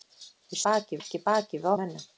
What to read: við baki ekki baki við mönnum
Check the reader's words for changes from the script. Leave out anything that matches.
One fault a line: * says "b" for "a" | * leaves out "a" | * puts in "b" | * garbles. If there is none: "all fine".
all fine